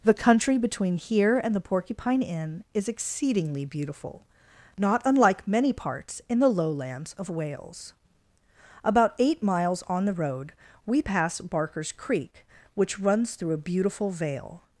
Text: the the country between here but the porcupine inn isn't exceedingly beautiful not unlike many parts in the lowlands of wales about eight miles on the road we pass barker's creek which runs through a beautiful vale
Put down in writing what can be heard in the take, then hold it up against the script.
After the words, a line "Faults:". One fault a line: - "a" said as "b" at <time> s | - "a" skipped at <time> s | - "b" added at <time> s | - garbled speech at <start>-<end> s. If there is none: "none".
the country between here and the porcupine inn is exceedingly beautiful not unlike many parts in the lowlands of wales about eight miles on the road we pass barker's creek which runs through a beautiful vale
Faults:
- "the" skipped at 0.1 s
- "but" said as "and" at 1.4 s
- "isn't" said as "is" at 2.7 s